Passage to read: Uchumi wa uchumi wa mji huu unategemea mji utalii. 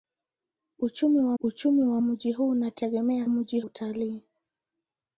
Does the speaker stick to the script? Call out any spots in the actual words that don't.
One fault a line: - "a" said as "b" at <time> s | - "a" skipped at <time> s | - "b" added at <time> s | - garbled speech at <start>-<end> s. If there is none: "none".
none